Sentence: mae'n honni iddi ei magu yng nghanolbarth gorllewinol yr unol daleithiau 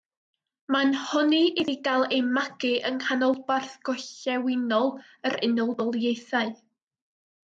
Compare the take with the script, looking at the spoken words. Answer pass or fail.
fail